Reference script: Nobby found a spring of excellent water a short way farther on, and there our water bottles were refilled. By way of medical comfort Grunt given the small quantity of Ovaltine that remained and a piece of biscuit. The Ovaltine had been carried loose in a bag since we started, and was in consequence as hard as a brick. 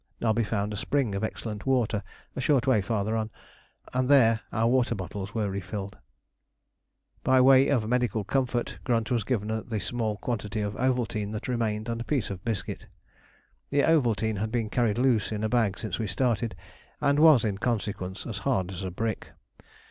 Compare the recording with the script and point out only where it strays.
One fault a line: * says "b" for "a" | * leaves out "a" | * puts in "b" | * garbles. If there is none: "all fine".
* puts in "was"